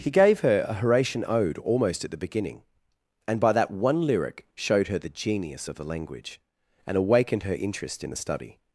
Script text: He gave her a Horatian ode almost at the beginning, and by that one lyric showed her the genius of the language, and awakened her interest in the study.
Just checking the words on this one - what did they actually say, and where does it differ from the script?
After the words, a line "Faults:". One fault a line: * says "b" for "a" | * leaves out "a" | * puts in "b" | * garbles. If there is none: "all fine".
He gave her a Horatian ode almost at the beginning, and by that one lyric showed her the genius of the language, and awakened her interest in the study.
Faults:
all fine